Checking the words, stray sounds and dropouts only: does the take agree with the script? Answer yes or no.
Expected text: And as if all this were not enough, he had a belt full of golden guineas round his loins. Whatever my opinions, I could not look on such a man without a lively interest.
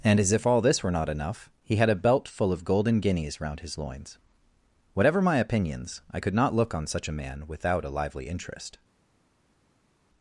yes